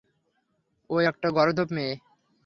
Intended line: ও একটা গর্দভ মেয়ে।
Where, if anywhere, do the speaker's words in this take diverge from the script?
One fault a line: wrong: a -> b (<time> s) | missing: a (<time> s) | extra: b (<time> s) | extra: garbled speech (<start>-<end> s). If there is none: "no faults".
no faults